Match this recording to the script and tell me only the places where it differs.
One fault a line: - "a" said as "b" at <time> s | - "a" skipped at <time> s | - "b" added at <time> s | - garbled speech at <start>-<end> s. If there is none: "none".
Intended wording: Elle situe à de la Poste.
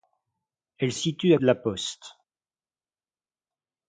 none